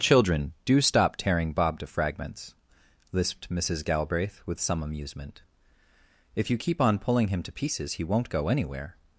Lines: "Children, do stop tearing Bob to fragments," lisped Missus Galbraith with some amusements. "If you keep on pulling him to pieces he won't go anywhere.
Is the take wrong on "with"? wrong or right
right